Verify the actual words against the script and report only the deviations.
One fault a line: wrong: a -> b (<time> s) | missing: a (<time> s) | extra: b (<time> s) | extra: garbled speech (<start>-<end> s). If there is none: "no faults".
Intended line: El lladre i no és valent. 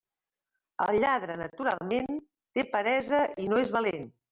extra: naturalment té peresa (1.4 s)